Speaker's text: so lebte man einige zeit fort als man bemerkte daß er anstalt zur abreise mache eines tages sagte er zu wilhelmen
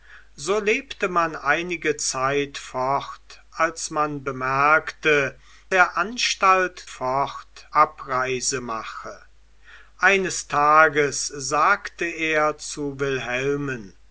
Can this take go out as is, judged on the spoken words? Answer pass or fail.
fail